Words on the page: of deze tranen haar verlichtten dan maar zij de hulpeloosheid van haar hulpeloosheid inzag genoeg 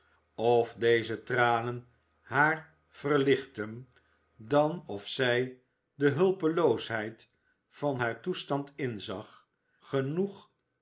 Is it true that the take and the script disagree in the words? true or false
true